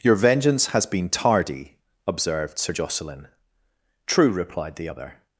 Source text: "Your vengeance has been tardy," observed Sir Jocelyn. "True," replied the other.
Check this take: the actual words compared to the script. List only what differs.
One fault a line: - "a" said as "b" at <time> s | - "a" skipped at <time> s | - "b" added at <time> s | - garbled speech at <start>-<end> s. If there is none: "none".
none